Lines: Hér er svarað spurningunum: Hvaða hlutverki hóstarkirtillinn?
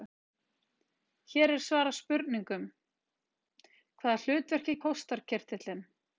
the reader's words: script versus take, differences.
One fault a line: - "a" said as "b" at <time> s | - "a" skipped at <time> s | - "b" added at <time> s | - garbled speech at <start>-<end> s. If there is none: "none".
none